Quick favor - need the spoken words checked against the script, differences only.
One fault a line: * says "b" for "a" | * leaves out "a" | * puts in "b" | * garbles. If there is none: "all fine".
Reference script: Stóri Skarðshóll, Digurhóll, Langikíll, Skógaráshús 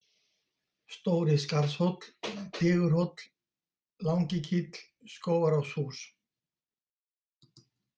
all fine